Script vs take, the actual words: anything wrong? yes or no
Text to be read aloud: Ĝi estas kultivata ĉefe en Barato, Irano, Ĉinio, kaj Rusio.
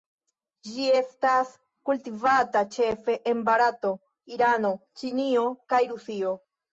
no